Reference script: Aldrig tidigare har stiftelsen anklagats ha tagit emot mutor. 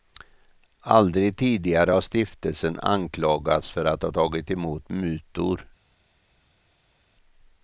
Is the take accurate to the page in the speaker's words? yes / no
no